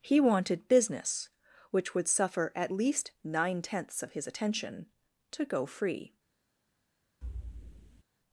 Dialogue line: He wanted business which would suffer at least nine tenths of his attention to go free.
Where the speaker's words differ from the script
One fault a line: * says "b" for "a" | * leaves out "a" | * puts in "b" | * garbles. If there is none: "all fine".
all fine